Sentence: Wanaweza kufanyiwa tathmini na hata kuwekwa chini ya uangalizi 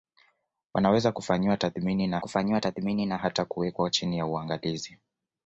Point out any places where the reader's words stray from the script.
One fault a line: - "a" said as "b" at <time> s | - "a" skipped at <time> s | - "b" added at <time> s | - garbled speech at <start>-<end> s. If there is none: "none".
- "kufanyiwa tathmini na" added at 2.2 s